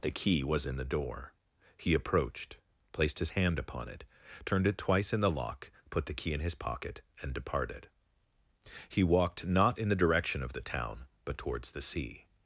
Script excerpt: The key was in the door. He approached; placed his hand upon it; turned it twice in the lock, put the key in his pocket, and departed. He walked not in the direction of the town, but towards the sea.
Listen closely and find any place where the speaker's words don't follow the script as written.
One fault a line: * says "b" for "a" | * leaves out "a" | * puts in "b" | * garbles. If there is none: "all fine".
all fine